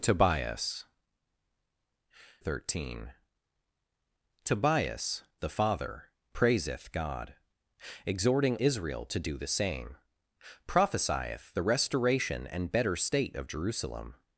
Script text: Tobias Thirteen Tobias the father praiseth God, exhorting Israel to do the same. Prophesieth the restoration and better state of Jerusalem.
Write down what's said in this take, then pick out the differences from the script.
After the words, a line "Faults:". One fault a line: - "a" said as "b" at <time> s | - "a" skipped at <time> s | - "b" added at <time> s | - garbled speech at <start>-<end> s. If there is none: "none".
Tobias Thirteen Tobias the father praiseth God, exhorting Israel to do the same. Prophesieth the restoration and better state of Jerusalem.
Faults:
none